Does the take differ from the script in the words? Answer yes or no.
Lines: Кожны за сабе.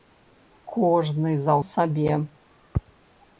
no